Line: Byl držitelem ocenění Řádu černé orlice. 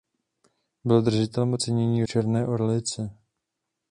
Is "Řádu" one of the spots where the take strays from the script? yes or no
yes